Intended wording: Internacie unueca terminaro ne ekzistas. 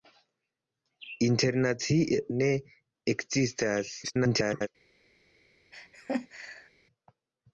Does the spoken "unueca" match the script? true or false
false